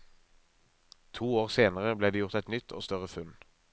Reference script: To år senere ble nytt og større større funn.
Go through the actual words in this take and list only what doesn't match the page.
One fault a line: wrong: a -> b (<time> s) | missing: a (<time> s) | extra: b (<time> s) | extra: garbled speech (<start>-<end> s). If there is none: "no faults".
extra: det gjort et (2.1 s)
missing: større (3.1 s)